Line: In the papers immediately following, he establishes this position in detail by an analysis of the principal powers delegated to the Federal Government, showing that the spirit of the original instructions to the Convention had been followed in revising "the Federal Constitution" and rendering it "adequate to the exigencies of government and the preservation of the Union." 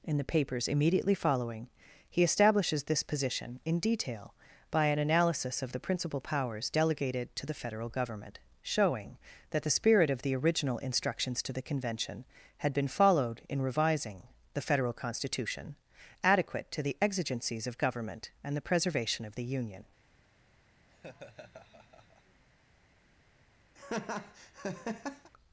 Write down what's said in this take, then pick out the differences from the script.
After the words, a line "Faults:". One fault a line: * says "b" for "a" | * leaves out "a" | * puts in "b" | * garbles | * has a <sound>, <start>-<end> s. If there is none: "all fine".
In the papers immediately following, he establishes this position in detail by an analysis of the principal powers delegated to the Federal Government, showing that the spirit of the original instructions to the Convention had been followed in revising "the Federal Constitution" "adequate to the exigencies of government and the preservation of the Union."
Faults:
* leaves out "and rendering it"
* has a laugh, 20.9-22.4 s
* has a laugh, 23.8-25.3 s